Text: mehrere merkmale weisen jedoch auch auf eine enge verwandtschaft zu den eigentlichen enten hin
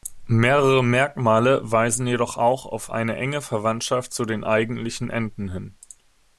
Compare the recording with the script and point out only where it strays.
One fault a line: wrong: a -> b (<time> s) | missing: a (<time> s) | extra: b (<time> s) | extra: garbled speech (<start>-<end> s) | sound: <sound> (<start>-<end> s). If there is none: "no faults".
no faults